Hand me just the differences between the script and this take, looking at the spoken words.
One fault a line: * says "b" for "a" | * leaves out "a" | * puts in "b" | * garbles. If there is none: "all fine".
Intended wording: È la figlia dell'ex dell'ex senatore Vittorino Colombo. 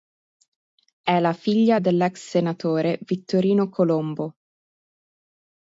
* leaves out "dell'ex"